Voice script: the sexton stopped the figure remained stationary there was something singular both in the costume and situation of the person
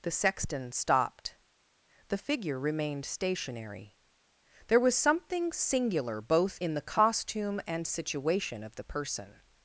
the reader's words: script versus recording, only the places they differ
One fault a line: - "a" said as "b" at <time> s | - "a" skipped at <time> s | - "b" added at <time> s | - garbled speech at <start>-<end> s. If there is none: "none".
none